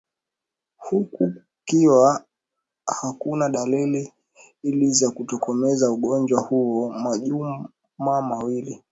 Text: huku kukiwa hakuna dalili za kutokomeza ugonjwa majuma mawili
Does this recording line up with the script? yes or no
no